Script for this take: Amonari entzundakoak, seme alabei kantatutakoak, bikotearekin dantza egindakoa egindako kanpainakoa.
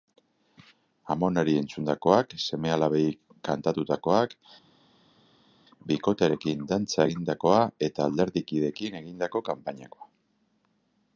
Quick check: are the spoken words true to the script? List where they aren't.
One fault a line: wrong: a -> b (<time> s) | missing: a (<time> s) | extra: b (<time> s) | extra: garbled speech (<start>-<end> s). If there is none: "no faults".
extra: eta alderdikideekin (7.9 s)